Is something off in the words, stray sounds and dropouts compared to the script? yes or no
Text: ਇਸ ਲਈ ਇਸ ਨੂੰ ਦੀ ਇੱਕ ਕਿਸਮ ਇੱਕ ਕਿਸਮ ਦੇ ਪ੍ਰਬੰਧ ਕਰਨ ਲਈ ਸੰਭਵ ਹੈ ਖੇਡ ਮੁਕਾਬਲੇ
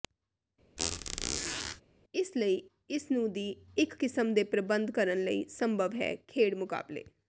yes